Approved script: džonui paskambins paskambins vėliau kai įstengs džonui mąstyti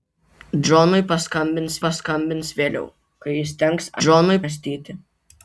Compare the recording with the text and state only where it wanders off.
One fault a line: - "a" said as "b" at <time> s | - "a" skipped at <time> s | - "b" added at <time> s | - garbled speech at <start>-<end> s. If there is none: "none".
none